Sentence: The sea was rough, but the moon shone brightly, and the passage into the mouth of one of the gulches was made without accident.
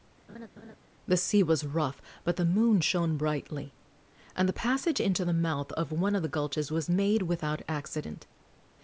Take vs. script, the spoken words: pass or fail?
pass